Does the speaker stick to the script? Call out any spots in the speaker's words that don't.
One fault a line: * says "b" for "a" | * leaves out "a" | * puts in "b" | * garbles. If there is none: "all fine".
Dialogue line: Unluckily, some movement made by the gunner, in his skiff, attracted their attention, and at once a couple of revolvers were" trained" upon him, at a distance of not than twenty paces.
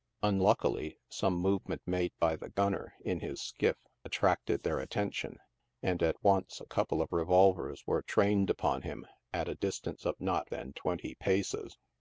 all fine